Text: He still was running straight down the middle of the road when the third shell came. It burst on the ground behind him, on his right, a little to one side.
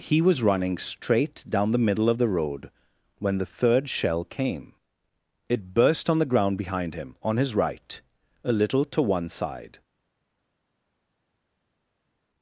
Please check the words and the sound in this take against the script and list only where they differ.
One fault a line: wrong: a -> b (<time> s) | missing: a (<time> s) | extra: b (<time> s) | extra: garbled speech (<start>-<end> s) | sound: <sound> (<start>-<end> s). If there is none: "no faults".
missing: still (0.2 s)